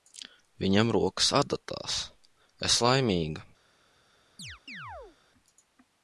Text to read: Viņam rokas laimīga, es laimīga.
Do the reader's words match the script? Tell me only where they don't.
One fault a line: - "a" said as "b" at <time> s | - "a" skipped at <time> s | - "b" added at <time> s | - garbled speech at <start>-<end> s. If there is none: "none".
- "laimīga" said as "adatās" at 1.4 s